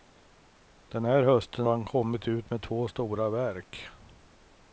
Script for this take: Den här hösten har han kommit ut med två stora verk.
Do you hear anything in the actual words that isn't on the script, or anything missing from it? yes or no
yes